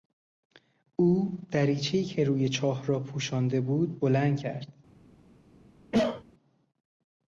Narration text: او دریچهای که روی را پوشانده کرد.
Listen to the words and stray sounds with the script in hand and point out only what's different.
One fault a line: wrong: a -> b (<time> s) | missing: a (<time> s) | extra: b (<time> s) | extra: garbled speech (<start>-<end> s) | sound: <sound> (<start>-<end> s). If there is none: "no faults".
extra: چاه (2.5 s)
extra: بود بلند (3.6 s)
sound: cough (5.9-6.2 s)